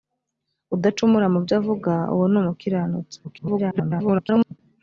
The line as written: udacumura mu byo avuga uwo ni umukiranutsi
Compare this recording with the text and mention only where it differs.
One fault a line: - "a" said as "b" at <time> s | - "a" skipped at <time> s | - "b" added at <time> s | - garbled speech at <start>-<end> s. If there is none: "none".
- garbled speech at 3.2-4.6 s